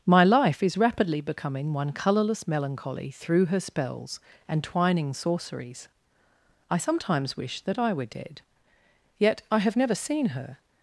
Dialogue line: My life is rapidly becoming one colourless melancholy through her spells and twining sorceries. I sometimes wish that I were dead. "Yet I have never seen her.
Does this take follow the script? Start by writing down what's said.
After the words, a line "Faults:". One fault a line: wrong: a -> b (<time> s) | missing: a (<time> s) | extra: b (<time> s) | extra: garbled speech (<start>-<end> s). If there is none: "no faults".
My life is rapidly becoming one colourless melancholy through her spells and twining sorceries. I sometimes wish that I were dead. "Yet I have never seen her.
Faults:
no faults